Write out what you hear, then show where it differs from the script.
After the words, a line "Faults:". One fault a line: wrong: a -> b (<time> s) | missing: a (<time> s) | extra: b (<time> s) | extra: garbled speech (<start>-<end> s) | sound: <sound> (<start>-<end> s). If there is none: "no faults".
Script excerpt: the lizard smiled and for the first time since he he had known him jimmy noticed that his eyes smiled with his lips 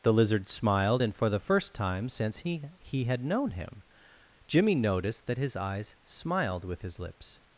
the lizard smiled and for the first time since he he had known him jimmy noticed that his eyes smiled with his lips
Faults:
no faults